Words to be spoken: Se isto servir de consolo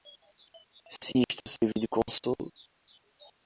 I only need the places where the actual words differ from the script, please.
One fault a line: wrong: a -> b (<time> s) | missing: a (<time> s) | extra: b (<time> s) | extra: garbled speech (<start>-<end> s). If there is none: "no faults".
no faults